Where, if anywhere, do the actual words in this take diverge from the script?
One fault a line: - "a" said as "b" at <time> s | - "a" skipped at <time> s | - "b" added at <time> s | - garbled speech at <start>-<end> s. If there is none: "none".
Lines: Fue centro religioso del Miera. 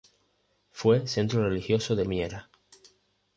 none